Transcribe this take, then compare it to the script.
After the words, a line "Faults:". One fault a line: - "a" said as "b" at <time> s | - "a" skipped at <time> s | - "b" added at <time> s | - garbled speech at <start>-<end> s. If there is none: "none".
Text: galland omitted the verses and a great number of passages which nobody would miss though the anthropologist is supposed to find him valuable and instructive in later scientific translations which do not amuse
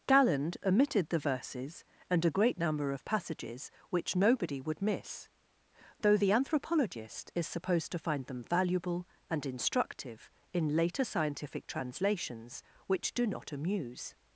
galland omitted the verses and a great number of passages which nobody would miss though the anthropologist is supposed to find them valuable and instructive in later scientific translations which do not amuse
Faults:
- "him" said as "them" at 8.2 s